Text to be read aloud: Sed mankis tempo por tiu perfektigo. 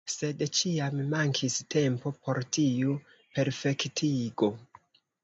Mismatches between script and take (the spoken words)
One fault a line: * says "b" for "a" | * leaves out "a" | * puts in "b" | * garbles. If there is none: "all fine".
* puts in "ĉiam"